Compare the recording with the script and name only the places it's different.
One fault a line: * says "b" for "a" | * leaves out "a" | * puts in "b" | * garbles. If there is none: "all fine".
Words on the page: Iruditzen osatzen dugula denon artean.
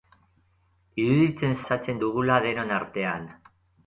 all fine